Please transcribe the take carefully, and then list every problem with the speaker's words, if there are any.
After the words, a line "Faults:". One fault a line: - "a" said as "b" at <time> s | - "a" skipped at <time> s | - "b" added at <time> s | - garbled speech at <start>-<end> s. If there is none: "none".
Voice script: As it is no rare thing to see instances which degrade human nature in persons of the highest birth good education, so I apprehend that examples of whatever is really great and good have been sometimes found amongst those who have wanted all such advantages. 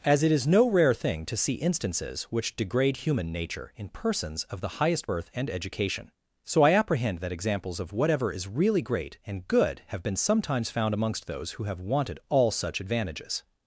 As it is no rare thing to see instances which degrade human nature in persons of the highest birth and education, so I apprehend that examples of whatever is really great and good have been sometimes found amongst those who have wanted all such advantages.
Faults:
- "good" said as "and" at 5.3 s